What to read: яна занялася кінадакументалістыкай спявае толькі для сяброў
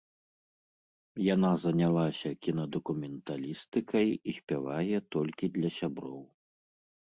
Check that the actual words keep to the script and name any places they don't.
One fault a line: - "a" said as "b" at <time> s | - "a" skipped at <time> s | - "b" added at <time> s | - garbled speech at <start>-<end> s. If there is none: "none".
- "і" added at 4.2 s